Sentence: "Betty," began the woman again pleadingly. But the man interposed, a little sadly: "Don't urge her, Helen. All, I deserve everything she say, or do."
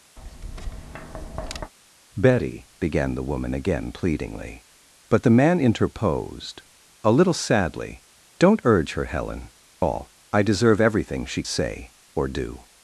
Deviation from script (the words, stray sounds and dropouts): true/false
true